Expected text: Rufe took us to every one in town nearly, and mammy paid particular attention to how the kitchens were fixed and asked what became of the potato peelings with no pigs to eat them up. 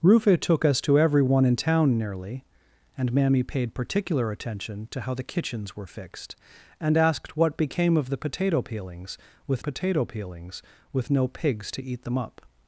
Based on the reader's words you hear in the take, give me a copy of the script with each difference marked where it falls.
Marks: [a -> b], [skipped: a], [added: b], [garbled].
Rufe took us to every one in town nearly, and mammy paid particular attention to how the kitchens were fixed and asked what became of the potato peelings with [added: potato peelings with] no pigs to eat them up.